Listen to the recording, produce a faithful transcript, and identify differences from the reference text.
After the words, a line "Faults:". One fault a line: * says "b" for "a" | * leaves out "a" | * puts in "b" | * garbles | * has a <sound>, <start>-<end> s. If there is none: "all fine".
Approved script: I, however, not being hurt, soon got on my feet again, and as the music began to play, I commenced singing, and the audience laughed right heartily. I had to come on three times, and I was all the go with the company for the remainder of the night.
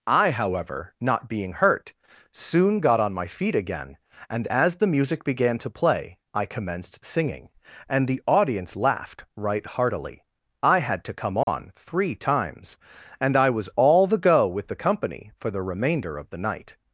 I, however, not being hurt, soon got on my feet again, and as the music began to play, I commenced singing, and the audience laughed right heartily. I had to come on three times, and I was all the go with the company for the remainder of the night.
Faults:
* has a dropout, 11.4-11.5 s